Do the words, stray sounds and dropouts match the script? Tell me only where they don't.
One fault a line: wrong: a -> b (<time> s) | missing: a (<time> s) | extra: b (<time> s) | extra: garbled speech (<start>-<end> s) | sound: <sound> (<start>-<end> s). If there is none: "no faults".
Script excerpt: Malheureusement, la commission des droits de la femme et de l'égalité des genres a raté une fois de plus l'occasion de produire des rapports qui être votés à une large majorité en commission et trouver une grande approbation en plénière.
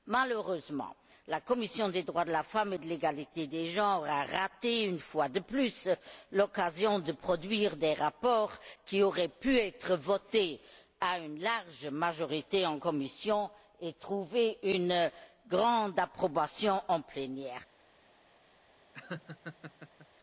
extra: auraient pu (9.0 s)
sound: laugh (18.9-20.1 s)